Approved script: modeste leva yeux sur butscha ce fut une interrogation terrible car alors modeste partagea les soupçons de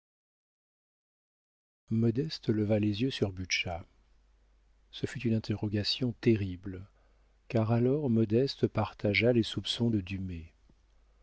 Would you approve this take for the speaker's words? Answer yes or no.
no